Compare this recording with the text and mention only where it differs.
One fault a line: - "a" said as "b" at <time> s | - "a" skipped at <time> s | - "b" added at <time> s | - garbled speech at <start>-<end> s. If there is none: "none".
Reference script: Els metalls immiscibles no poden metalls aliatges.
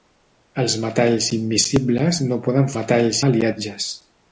none